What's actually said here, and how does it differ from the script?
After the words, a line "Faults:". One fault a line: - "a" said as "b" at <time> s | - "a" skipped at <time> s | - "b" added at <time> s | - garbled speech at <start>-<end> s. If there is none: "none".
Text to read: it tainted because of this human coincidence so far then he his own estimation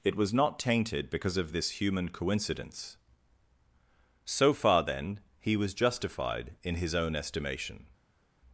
it was not tainted because of this human coincidence so far then he was justified in his own estimation
Faults:
- "was not" added at 0.1 s
- "was justified in" added at 5.6 s